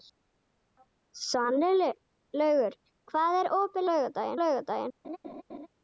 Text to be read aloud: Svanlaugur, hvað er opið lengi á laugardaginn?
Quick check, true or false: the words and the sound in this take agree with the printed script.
false